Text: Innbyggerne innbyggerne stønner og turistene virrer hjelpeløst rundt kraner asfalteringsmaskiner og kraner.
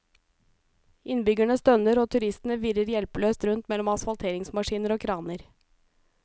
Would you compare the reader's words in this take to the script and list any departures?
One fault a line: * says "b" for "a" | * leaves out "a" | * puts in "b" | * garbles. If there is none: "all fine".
* leaves out "innbyggerne"
* says "mellom" for "kraner"